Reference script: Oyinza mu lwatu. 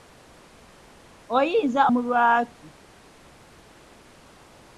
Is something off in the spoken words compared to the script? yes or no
no